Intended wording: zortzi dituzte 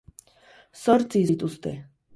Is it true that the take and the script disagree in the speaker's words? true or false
false